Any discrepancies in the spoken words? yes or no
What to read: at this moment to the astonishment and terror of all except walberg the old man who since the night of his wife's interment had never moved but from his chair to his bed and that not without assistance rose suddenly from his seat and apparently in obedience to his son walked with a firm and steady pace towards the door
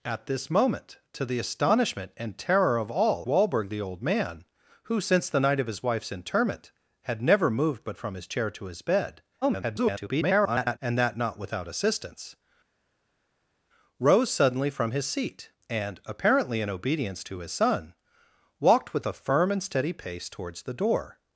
yes